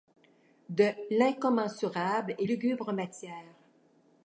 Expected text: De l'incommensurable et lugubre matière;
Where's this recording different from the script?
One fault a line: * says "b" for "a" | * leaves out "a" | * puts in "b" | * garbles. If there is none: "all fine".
all fine